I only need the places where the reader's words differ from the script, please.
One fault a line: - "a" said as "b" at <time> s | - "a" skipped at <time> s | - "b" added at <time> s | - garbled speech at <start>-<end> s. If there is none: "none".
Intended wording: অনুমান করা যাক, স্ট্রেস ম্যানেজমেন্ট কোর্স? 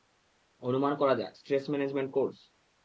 none